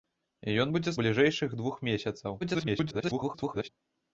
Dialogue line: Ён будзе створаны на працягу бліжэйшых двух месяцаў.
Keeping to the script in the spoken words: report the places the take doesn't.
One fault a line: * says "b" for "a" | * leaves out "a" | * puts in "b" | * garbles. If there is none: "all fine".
* leaves out "створаны на працягу"
* garbles